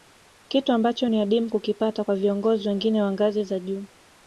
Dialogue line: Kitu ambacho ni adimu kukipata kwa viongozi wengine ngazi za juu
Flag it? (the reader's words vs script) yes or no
yes